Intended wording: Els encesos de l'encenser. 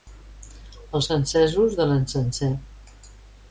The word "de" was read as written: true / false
true